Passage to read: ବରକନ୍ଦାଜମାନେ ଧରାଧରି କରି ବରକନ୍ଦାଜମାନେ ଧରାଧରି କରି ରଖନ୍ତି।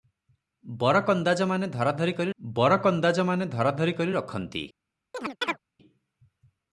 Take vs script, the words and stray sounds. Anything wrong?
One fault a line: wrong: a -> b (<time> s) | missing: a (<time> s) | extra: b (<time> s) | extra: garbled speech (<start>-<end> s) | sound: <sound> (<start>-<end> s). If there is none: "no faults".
sound: chirp (5.1-5.6 s)